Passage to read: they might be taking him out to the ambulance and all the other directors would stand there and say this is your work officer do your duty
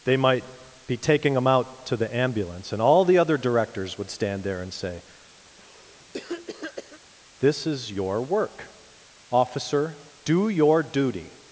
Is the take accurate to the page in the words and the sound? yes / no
no